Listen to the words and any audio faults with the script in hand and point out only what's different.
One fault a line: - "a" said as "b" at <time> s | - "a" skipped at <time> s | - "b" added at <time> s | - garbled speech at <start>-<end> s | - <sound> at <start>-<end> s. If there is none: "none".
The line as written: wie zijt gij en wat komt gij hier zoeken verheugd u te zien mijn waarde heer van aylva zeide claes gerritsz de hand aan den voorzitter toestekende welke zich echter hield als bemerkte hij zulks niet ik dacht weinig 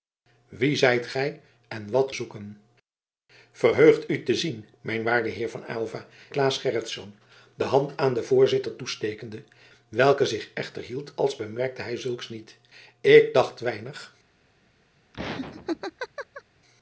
- "komt gij hier" skipped at 2.1 s
- "zeide" skipped at 6.1 s
- laugh at 15.1-16.4 s